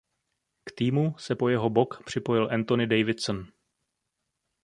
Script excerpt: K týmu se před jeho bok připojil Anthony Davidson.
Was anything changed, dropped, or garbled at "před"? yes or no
yes